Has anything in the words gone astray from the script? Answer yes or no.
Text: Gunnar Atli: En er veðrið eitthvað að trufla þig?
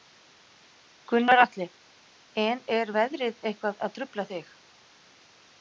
no